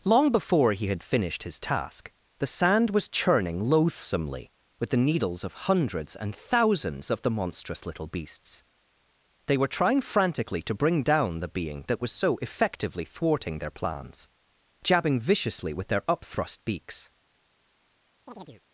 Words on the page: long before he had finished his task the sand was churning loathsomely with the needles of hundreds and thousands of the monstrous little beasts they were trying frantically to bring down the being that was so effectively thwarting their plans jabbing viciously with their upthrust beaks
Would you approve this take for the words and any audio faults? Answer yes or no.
no